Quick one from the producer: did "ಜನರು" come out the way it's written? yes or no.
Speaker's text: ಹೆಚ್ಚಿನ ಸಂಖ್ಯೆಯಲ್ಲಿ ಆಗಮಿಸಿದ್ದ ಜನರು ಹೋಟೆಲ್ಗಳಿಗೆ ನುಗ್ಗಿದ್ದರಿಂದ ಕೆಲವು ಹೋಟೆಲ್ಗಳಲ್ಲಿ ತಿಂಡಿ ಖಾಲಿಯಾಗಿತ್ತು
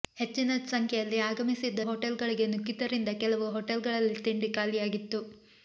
no